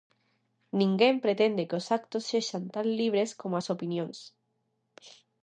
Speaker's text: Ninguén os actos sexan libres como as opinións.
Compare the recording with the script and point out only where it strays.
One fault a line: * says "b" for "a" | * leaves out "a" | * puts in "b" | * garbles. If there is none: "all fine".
* puts in "pretende que"
* puts in "tan"